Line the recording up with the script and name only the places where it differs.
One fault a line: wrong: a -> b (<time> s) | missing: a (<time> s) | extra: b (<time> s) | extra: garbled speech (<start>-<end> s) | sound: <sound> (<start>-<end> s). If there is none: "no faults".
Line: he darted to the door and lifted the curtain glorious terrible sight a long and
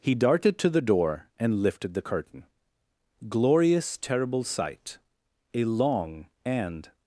no faults